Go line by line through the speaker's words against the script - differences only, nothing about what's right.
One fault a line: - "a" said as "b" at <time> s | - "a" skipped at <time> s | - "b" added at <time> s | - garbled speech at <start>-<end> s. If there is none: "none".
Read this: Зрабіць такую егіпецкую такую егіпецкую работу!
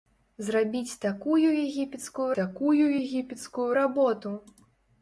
none